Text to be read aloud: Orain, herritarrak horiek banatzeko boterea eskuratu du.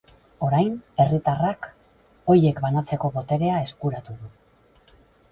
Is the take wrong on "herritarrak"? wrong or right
right